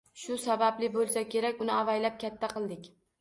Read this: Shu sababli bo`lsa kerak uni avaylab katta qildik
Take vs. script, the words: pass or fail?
pass